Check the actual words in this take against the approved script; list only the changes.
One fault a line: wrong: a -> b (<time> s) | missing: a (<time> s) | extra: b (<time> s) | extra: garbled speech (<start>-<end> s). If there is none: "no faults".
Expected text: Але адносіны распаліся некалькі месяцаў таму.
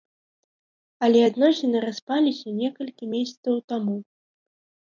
no faults